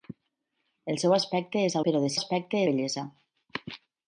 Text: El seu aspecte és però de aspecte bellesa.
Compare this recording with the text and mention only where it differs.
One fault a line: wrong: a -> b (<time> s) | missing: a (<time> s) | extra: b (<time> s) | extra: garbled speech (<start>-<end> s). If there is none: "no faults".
no faults